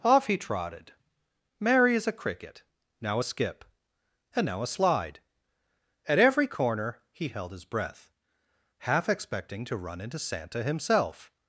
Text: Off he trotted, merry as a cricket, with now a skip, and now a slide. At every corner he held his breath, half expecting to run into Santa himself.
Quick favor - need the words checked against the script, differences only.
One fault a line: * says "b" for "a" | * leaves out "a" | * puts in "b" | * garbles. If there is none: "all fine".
* leaves out "with"